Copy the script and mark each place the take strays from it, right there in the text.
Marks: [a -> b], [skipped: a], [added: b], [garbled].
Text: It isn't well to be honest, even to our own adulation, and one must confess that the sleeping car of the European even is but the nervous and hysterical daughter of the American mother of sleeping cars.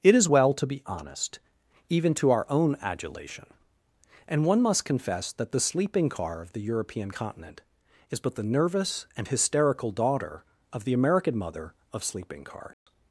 It [isn't -> is] well to be honest, even to our own adulation, and one must confess that the sleeping car of the European [even -> continent] is but the nervous and hysterical daughter of the American mother of sleeping cars.